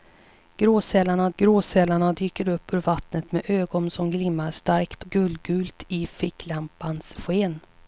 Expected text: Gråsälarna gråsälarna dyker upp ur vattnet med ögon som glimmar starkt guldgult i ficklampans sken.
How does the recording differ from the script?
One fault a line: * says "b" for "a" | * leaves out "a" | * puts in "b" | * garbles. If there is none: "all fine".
all fine